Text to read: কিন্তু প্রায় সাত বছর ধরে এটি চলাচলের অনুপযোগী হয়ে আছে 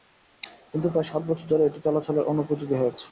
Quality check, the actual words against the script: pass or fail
pass